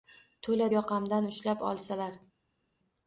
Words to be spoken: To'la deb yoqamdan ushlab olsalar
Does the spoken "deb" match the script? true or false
false